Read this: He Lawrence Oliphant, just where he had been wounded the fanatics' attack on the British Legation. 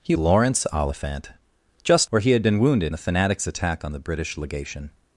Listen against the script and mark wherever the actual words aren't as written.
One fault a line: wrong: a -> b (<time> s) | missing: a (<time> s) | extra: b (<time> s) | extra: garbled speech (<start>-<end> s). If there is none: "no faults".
no faults